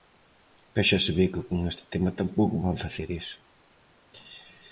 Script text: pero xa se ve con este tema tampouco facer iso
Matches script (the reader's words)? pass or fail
fail